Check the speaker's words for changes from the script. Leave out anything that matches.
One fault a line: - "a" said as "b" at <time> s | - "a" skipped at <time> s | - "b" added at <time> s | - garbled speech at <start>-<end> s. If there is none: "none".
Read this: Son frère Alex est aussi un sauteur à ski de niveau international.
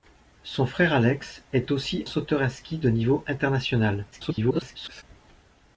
- "un" skipped at 2.0 s
- garbled speech at 4.1-5.0 s